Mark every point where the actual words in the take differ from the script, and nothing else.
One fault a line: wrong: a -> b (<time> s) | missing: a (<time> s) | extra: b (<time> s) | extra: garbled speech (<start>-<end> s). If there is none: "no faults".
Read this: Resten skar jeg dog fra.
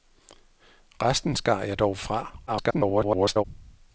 extra: garbled speech (2.5-3.4 s)